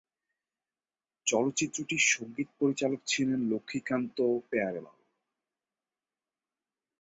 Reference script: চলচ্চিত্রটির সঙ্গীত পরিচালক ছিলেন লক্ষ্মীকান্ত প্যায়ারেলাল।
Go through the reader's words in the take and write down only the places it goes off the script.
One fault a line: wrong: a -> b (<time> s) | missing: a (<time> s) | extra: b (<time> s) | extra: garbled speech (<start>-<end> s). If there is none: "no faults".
no faults